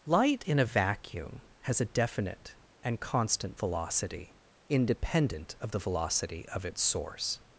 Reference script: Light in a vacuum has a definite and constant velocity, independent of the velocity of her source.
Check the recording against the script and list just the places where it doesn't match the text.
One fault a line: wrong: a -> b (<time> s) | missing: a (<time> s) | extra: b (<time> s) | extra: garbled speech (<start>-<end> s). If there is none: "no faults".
wrong: her -> its (6.6 s)